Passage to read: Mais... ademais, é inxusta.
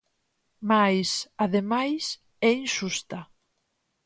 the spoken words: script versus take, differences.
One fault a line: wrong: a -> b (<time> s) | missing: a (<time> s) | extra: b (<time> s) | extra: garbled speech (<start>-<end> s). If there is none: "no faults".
no faults